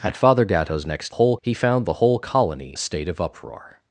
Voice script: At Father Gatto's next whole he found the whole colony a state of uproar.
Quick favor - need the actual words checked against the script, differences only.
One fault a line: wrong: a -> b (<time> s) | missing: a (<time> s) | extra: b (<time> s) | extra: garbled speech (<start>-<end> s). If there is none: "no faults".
no faults